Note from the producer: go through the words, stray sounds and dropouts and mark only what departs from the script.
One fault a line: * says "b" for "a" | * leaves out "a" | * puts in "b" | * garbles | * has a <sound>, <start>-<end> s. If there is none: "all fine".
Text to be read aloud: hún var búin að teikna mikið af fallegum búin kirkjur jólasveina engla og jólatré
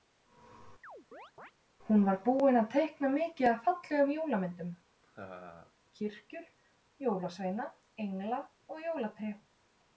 * has a chirp, 0.8-1.5 s
* says "jólamyndum" for "búin"
* has a laugh, 5.0-5.7 s